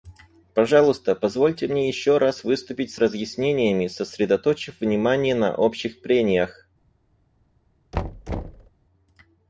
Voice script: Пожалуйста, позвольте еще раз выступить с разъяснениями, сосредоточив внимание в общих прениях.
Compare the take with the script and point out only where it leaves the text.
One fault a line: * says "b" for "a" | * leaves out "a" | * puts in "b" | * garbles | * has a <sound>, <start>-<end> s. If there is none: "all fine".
* puts in "мне"
* says "на" for "в"
* has a thud, 7.9-8.7 s